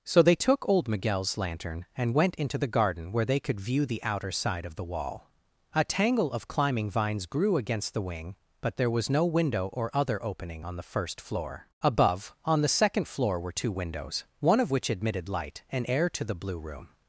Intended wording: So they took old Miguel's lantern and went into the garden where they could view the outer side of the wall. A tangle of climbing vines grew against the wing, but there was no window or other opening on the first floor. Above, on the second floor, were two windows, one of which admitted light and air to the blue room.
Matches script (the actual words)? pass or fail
pass